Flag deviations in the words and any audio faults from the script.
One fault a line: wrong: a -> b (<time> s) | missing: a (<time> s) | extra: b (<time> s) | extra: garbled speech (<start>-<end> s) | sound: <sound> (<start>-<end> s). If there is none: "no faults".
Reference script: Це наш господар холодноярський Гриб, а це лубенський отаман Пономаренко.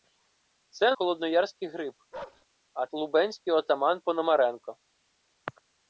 missing: наш господар (0.9 s)
sound: bark (2.1-2.5 s)
missing: це (2.9 s)